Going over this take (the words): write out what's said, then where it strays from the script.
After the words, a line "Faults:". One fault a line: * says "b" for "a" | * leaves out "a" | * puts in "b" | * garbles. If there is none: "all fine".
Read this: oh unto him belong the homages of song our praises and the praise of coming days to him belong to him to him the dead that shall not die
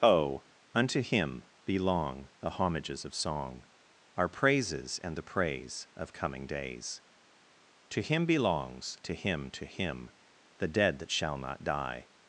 oh unto him belong the homages of song our praises and the praise of coming days to him belongs to him to him the dead that shall not die
Faults:
* says "belongs" for "belong"